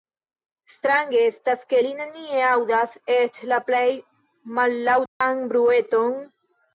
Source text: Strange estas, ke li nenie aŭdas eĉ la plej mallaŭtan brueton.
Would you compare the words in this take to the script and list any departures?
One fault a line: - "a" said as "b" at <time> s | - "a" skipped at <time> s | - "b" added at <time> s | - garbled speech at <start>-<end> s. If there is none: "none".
none